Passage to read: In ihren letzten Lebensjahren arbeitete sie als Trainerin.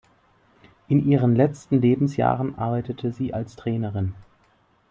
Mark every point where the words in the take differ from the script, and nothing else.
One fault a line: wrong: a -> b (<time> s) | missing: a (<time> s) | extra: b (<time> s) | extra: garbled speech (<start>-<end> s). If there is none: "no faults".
no faults